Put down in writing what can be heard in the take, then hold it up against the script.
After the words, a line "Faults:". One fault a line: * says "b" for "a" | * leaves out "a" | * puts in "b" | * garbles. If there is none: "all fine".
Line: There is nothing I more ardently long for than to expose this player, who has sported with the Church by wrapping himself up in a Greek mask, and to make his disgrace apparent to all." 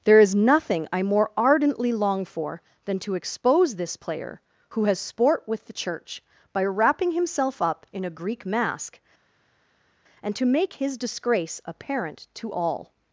There is nothing I more ardently long for than to expose this player, who has sport with the Church by wrapping himself up in a Greek mask, and to make his disgrace apparent to all."
Faults:
* says "sport" for "sported"